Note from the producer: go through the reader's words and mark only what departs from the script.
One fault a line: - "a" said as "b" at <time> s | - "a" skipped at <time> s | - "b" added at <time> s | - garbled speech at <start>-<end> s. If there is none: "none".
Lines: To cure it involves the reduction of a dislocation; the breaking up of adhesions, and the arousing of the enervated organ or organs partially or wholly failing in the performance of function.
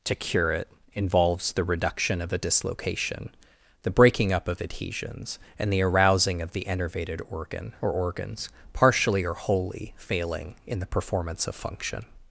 none